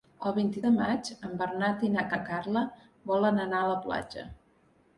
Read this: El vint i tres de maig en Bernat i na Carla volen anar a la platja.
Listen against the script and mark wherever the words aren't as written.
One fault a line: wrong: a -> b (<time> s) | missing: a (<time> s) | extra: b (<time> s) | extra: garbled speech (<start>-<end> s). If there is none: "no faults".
missing: tres (0.6 s)
extra: na (2.1 s)